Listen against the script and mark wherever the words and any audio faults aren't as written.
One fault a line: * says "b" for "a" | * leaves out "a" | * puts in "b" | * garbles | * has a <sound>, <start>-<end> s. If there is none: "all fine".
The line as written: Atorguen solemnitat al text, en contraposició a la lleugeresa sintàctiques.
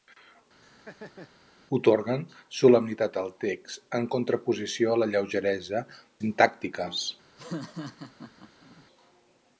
* has a laugh, 0.6-1.3 s
* has a laugh, 7.4-8.9 s